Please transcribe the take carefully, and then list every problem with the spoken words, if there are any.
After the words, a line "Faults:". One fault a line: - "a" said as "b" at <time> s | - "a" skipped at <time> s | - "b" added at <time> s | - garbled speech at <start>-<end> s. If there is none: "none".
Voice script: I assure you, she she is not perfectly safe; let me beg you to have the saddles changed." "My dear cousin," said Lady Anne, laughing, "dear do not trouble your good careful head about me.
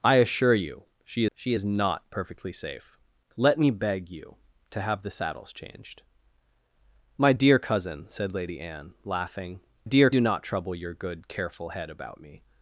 I assure you, she she is not perfectly safe; let me beg you to have the saddles changed." "My dear cousin," said Lady Anne, laughing, "dear do not trouble your good careful head about me.
Faults:
none